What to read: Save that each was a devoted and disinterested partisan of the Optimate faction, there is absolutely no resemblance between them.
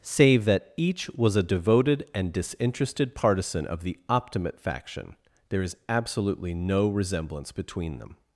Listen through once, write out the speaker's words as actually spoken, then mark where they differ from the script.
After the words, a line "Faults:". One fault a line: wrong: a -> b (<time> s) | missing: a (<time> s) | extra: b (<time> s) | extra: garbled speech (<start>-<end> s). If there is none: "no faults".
Save that each was a devoted and disinterested partisan of the Optimate faction, there is absolutely no resemblance between them.
Faults:
no faults